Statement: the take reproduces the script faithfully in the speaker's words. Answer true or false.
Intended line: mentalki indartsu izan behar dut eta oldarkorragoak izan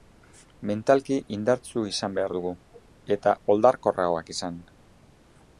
false